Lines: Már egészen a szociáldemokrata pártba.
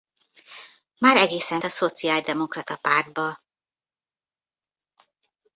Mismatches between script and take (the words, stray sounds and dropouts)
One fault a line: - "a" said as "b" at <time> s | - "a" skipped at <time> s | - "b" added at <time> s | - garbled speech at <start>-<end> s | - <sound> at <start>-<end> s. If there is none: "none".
none